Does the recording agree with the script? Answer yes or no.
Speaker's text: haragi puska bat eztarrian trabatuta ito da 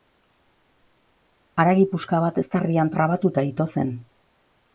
no